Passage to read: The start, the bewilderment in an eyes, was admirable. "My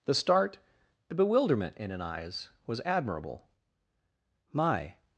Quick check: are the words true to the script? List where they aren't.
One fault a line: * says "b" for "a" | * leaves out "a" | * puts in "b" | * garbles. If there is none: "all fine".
all fine